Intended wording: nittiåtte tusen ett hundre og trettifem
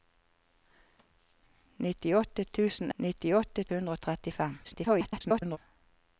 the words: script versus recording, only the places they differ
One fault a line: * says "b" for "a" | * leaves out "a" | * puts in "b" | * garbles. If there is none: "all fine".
* says "nittiåtte" for "ett"
* garbles